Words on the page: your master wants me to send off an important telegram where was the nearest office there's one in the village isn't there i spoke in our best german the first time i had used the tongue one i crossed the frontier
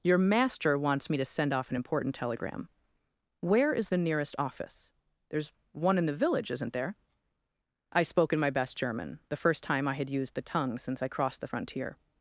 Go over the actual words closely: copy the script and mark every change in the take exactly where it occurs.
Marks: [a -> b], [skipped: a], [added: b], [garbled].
your master wants me to send off an important telegram where [was -> is] the nearest office there's one in the village isn't there i spoke in [our -> my] best german the first time i had used the tongue [one -> since] i crossed the frontier